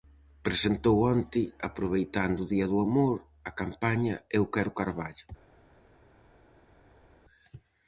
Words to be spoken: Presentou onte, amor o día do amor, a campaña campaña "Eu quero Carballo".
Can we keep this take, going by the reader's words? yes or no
no